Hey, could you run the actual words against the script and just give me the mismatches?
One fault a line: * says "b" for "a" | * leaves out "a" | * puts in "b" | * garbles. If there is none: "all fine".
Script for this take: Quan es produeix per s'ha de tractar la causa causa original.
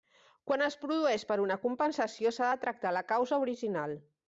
* puts in "una compensació"
* leaves out "causa"